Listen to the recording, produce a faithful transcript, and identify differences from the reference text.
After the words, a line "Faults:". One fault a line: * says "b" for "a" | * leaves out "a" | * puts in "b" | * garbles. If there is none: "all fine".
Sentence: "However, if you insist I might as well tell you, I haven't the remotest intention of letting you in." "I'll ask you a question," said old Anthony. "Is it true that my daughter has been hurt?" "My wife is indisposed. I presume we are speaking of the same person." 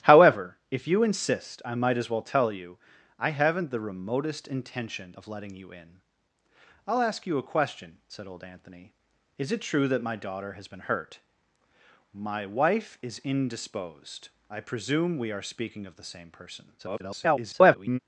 "However, if you insist I might as well tell you, I haven't the remotest intention of letting you in." "I'll ask you a question," said old Anthony. "Is it true that my daughter has been hurt?" "My wife is indisposed. I presume we are speaking of the same person." [garbled]
Faults:
* garbles